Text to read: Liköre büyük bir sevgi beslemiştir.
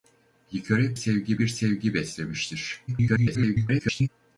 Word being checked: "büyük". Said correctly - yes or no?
no